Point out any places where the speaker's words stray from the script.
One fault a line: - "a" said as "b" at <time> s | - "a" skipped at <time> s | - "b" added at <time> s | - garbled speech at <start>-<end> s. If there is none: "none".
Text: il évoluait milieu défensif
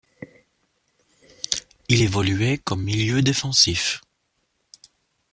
- "comme" added at 2.7 s